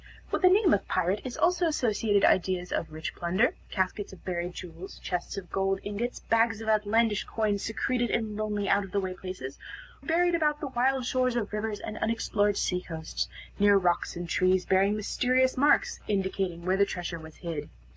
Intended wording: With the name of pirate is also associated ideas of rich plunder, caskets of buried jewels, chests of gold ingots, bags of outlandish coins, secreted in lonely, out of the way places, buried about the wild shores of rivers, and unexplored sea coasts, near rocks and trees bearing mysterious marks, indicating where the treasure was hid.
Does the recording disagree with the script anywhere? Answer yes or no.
no